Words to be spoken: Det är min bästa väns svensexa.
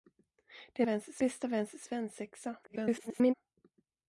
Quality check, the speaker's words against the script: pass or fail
fail